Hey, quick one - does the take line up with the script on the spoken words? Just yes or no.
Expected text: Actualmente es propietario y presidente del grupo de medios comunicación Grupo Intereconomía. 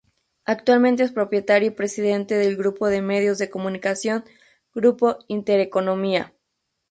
no